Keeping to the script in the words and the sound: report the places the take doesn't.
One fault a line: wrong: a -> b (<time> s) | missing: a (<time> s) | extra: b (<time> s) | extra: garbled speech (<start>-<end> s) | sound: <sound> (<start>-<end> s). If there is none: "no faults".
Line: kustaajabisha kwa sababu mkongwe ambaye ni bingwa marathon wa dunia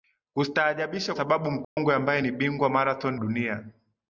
missing: kwa (1.1 s)
sound: dropout (1.6-1.8 s)
missing: wa (3.2 s)